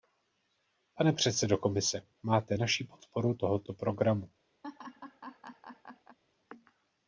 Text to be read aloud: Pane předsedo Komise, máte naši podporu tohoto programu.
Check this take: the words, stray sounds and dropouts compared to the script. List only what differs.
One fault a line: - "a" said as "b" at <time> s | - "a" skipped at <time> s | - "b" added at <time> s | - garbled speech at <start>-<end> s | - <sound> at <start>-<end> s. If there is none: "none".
- laugh at 4.6-6.2 s